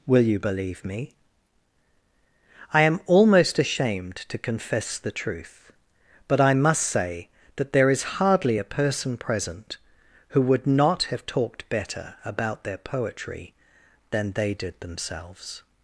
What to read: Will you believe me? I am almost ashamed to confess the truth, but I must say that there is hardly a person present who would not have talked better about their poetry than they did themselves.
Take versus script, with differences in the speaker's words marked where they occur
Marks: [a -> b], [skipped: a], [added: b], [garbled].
Will you believe me? I am almost ashamed to confess the truth, but I must say that there is hardly a person present who would not have talked better about their poetry than they did themselves.